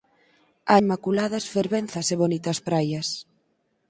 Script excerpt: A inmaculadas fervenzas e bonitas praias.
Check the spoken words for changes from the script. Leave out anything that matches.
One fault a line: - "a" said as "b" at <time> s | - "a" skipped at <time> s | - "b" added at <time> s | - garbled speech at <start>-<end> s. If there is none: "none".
none